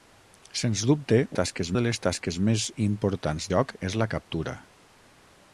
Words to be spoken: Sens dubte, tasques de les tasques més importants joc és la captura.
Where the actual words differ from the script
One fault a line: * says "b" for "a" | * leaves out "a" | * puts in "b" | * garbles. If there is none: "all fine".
all fine